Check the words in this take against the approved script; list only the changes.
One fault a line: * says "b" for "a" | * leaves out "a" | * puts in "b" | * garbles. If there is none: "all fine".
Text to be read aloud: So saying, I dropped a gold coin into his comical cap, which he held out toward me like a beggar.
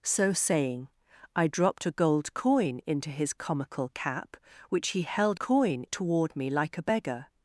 * says "coin" for "out"